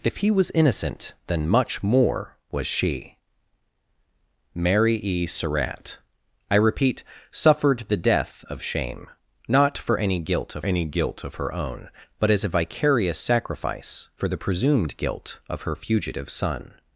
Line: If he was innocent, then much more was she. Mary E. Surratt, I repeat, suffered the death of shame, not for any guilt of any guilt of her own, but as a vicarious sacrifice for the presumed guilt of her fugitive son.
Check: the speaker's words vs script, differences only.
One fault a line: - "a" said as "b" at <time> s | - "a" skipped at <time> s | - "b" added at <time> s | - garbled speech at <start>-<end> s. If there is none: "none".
none